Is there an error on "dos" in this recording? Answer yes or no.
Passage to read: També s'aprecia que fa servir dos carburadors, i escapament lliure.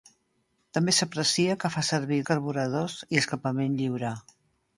yes